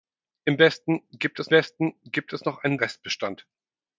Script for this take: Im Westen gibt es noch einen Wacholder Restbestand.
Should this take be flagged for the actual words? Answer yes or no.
yes